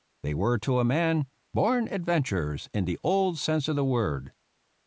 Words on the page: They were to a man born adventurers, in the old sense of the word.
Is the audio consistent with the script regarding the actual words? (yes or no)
yes